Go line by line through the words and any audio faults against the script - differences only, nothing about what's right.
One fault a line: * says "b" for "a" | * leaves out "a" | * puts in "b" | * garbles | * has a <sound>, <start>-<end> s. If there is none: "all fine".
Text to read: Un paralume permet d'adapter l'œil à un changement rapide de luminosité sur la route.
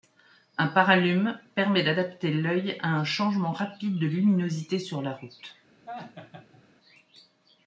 * has a laugh, 5.9-6.6 s